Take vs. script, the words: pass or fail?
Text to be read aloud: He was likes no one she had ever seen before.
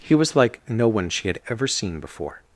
fail